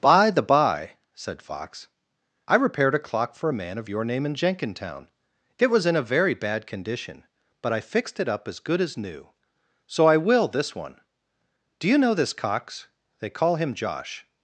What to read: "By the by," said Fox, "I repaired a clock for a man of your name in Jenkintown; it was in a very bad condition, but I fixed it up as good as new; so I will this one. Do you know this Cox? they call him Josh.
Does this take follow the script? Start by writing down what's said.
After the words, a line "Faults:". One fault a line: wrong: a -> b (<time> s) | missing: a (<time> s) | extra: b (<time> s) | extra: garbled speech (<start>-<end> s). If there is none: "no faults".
"By the by," said Fox, "I repaired a clock for a man of your name in Jenkintown; it was in a very bad condition, but I fixed it up as good as new; so I will this one. Do you know this Cox? they call him Josh.
Faults:
no faults